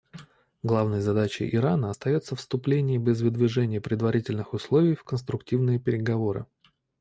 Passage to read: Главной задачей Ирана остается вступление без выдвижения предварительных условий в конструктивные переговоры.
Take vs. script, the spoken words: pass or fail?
pass